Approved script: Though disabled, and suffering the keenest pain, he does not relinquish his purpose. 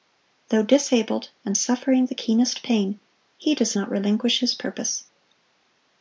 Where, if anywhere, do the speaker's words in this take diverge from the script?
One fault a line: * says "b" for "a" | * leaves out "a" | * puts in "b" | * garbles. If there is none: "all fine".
all fine